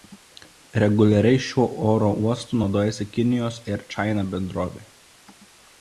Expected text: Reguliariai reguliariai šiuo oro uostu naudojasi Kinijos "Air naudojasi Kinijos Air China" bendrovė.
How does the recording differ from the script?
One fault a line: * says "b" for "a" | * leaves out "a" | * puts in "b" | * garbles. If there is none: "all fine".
* leaves out "reguliariai"
* leaves out "naudojasi Kinijos Air"